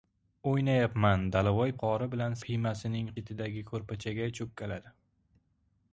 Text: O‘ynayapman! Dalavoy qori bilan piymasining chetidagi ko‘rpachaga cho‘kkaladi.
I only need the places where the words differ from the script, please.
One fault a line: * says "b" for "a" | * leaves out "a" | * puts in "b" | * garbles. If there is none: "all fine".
all fine